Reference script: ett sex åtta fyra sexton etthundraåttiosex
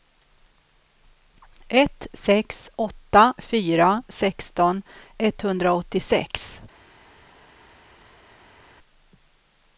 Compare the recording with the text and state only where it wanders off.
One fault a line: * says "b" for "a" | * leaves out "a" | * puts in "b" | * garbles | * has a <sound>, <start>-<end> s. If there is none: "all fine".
all fine